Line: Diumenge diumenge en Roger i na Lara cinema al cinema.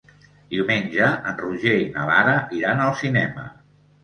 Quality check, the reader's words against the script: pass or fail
fail